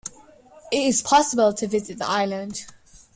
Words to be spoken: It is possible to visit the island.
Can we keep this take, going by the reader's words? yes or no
yes